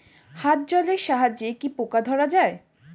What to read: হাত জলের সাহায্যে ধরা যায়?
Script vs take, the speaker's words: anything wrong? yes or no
yes